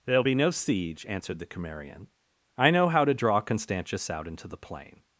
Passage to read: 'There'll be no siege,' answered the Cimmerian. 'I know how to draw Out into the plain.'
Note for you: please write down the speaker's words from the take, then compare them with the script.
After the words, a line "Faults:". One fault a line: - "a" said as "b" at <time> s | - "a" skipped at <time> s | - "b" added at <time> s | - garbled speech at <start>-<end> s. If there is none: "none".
'There'll be no siege,' answered the Cimmerian. 'I know how to draw Constantius out into the plain.'
Faults:
- "Constantius" added at 3.4 s